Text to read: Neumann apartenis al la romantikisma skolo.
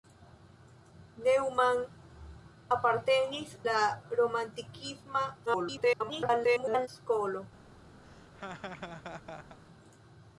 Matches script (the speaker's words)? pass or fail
fail